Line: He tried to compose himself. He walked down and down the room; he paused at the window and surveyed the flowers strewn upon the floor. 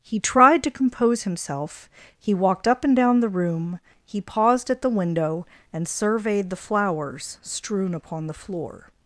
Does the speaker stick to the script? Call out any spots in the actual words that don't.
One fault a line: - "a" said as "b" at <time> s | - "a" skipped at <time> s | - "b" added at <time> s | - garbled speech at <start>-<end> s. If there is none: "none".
- "down" said as "up" at 2.7 s